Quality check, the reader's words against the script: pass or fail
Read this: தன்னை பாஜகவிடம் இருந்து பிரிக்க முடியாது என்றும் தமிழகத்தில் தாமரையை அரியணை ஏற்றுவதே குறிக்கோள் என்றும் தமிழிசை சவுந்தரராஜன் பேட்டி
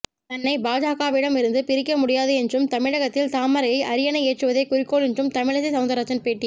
pass